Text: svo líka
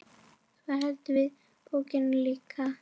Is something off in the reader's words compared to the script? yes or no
yes